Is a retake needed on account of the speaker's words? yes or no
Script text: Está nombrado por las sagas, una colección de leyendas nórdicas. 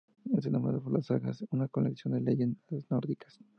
no